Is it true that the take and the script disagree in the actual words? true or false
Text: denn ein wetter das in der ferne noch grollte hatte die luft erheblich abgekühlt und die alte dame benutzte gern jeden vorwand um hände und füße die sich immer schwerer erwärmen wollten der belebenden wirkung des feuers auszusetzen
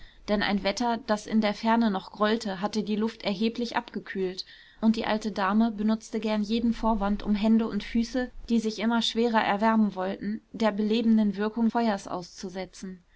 true